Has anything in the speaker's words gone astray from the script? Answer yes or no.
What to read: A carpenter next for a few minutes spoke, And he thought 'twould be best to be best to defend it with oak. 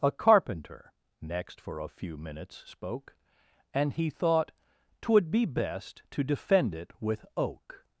yes